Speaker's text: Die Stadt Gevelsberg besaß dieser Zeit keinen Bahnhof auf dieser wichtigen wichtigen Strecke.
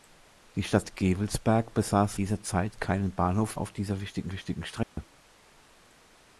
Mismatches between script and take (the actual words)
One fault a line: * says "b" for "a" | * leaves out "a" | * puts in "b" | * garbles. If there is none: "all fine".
all fine